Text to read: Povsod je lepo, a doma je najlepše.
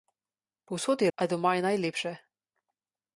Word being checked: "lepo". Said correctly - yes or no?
no